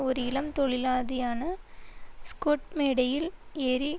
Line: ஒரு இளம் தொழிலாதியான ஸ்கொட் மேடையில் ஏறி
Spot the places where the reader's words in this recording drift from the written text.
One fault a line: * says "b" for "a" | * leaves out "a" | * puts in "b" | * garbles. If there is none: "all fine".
all fine